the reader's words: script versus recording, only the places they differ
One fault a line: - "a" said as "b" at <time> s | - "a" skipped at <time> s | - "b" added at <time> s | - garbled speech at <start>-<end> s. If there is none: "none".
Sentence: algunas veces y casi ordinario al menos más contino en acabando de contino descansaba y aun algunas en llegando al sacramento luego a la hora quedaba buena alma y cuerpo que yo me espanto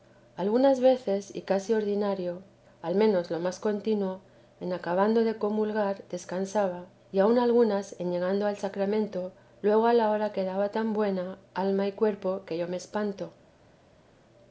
- "lo" added at 3.3 s
- "contino" said as "comulgar" at 5.4 s
- "tan" added at 10.7 s